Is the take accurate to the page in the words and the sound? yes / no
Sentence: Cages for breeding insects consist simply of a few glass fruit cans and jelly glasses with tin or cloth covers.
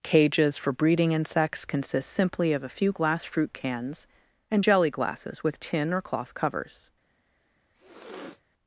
no